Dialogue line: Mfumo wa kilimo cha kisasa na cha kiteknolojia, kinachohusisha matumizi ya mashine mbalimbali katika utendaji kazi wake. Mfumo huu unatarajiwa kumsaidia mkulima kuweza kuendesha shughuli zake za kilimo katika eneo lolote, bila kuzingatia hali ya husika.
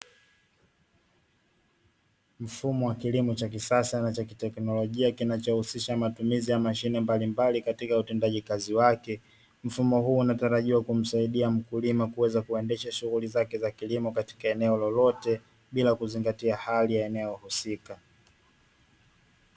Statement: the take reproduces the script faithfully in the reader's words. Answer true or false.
false